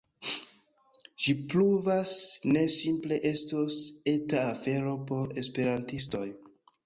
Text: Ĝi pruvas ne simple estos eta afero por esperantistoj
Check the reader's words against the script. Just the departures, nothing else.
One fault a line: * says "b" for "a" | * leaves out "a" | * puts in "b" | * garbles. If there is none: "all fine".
all fine